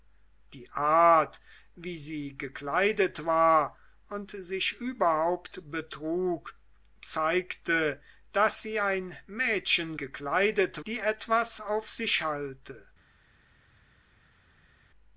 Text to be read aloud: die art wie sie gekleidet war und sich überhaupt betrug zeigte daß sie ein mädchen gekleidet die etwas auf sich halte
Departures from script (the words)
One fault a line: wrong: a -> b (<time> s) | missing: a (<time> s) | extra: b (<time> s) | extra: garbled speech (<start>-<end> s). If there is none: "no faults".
no faults